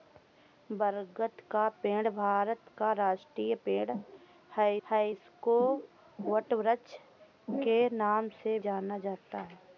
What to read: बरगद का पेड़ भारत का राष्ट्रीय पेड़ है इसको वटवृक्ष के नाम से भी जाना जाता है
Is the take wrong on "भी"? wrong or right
wrong